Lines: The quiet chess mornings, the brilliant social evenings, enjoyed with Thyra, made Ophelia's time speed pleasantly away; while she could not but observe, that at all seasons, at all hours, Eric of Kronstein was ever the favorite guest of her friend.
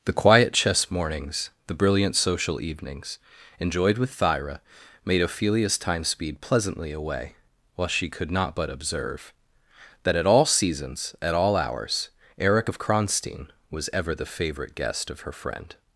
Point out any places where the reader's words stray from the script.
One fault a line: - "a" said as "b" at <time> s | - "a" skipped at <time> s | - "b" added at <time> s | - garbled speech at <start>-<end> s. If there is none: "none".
none